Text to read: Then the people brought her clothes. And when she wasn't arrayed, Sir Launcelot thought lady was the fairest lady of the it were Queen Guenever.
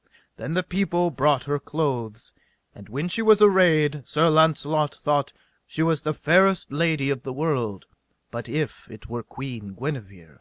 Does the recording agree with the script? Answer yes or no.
no